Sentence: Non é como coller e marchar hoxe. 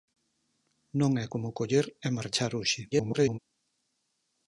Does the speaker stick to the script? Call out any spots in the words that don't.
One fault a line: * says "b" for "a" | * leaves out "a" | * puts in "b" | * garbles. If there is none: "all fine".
* garbles